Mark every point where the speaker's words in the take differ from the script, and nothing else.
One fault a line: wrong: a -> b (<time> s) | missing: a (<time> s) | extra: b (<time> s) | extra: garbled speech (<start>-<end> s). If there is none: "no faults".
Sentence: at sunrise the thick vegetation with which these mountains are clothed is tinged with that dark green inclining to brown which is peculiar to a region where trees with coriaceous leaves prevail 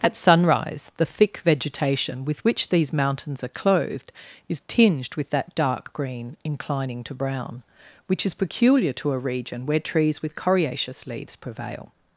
no faults